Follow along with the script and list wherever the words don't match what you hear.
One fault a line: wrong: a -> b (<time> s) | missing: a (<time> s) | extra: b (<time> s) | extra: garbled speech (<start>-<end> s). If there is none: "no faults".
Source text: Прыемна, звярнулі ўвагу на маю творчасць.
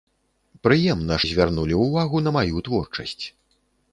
no faults